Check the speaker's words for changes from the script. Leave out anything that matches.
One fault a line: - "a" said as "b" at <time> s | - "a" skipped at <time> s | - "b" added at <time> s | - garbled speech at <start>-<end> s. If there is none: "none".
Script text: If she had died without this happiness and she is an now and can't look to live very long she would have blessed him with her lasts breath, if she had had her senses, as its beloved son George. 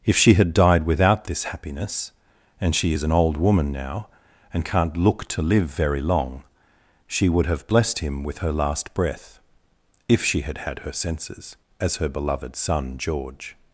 - "old woman" added at 3.1 s
- "lasts" said as "last" at 8.5 s
- "its" said as "her" at 12.0 s